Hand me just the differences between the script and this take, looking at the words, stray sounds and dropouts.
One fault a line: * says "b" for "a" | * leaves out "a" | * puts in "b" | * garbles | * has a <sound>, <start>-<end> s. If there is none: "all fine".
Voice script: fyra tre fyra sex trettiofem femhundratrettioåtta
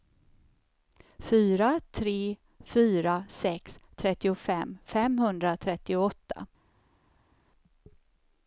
all fine